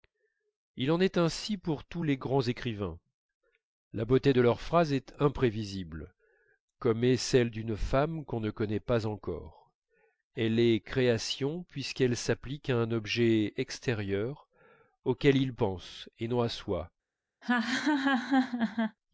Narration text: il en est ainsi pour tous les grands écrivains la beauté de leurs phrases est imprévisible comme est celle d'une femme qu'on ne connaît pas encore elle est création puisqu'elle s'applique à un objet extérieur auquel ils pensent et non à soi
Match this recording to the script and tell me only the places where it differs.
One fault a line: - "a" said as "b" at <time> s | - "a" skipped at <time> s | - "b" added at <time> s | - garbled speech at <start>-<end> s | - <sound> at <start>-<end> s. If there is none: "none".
- laugh at 17.4-19.0 s